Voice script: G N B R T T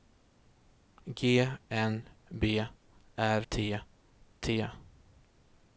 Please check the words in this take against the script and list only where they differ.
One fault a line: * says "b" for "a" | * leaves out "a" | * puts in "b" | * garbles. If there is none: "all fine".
all fine